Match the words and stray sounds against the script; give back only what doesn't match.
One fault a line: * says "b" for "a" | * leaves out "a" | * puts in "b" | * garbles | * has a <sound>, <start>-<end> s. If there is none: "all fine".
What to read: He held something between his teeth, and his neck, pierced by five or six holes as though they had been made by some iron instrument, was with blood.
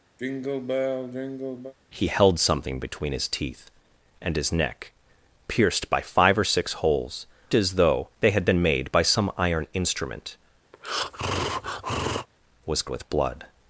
* has a sigh, 0.2-1.7 s
* has a breath, 10.7-12.3 s